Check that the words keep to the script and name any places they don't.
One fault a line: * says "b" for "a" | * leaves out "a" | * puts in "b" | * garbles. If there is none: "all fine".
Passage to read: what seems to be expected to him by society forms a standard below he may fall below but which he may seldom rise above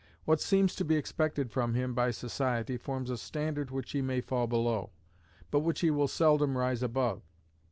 * says "from" for "to"
* says "which" for "below"
* says "will" for "may"